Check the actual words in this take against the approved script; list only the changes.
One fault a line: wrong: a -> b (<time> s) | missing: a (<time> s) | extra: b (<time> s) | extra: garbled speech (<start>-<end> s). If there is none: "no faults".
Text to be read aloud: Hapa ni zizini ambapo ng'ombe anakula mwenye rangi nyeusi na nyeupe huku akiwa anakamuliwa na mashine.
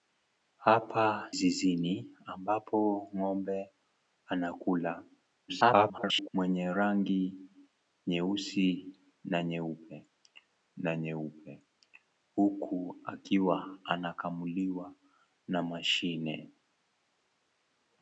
missing: ni (1.1 s)
extra: garbled speech (5.5-6.3 s)
extra: na nyeupe (10.8 s)